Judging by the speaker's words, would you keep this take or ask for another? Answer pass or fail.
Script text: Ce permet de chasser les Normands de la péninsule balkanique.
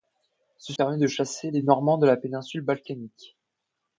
pass